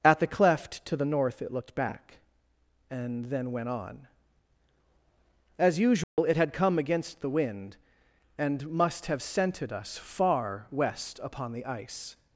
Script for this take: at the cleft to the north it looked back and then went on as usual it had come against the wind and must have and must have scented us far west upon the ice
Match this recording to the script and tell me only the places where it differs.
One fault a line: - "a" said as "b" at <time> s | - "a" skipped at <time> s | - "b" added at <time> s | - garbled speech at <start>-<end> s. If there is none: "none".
- "and must have" skipped at 9.2 s